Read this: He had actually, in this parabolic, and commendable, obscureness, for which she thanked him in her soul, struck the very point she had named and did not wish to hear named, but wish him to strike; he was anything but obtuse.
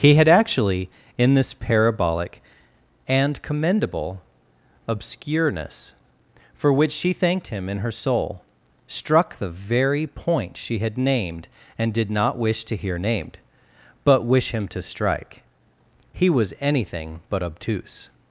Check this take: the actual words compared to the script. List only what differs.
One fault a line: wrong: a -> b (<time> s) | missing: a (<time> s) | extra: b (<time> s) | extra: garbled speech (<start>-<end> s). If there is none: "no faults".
no faults